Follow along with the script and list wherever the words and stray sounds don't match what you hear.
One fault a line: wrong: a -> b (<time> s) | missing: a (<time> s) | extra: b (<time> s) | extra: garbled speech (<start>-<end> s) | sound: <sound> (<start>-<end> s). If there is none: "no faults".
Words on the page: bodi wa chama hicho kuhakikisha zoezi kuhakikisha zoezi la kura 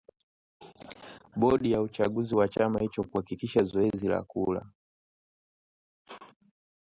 extra: ya uchaguzi (1.7 s)
missing: kuhakikisha zoezi (4.1 s)